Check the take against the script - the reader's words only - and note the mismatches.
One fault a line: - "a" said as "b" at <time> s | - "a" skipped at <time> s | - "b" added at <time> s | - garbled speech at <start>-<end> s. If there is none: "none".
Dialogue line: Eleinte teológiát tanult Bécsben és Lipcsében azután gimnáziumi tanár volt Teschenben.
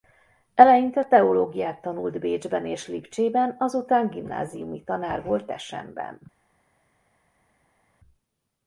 none